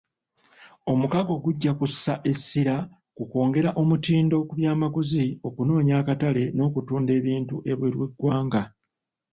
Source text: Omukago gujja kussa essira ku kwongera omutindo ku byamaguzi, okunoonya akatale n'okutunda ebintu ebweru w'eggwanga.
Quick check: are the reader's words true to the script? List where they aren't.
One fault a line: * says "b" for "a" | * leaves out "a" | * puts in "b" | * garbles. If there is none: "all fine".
all fine